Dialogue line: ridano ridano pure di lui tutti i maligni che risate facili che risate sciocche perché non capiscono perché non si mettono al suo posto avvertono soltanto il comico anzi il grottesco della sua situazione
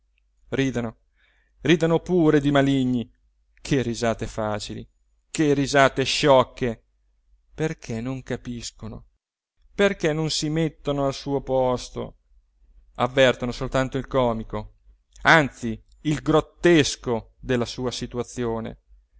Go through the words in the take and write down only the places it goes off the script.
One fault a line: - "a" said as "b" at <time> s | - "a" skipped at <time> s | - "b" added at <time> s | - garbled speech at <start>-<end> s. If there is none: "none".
- "lui tutti" skipped at 2.5 s